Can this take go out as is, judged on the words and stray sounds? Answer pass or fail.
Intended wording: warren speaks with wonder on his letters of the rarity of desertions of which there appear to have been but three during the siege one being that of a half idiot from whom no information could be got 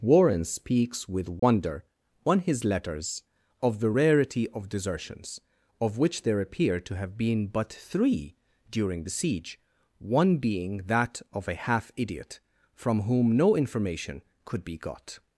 fail